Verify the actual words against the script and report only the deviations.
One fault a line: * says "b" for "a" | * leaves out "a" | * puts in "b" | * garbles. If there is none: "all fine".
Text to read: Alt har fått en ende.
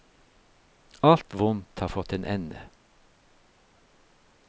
* puts in "vondt"